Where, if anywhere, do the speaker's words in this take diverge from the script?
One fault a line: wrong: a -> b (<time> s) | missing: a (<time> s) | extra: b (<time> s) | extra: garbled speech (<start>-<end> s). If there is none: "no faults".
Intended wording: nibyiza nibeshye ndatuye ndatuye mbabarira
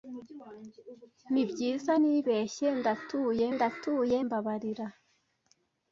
no faults